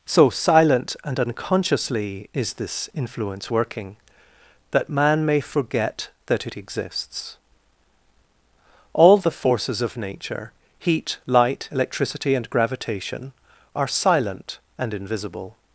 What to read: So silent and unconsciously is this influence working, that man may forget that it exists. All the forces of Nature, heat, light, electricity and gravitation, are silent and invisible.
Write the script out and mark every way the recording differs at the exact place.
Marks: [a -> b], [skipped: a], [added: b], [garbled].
So silent and unconsciously is this influence working, that man may forget that it exists. All the forces of Nature, heat, light, electricity and gravitation, are silent and invisible.